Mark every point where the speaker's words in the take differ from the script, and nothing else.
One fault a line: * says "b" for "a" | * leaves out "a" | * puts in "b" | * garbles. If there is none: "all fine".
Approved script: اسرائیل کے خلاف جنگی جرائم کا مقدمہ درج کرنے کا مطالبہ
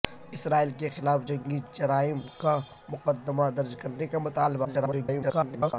* garbles